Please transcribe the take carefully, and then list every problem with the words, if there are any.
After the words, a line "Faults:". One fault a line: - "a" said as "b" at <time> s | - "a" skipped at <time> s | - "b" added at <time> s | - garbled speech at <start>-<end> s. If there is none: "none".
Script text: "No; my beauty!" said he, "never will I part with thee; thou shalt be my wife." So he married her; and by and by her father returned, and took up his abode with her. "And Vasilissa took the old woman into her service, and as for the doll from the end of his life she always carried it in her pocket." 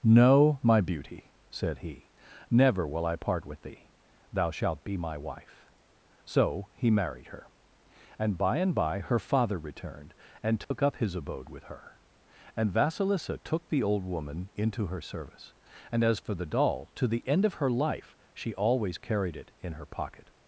"No; my beauty!" said he, "never will I part with thee; thou shalt be my wife." So he married her; and by and by her father returned, and took up his abode with her. "And Vasilissa took the old woman into her service, and as for the doll to the end of her life she always carried it in her pocket."
Faults:
- "from" said as "to" at 16.9 s
- "his" said as "her" at 17.5 s